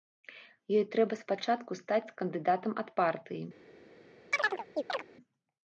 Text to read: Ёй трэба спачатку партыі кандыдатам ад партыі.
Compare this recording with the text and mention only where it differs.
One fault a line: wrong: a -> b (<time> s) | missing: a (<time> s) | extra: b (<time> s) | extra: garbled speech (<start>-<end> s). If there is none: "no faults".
wrong: партыі -> стаць (1.8 s)